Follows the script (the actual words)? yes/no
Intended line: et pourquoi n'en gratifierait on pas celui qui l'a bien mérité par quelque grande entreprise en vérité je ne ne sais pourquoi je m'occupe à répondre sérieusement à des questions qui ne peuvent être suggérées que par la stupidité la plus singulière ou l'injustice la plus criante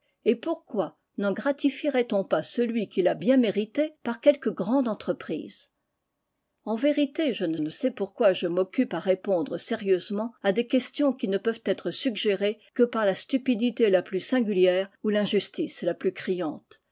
yes